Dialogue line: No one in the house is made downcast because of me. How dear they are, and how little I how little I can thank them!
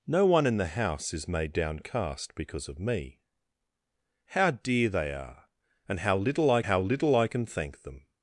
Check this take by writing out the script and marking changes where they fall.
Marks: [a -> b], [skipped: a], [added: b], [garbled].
No one in the house is made downcast because of me. How dear they are, and how little I how little I can thank them!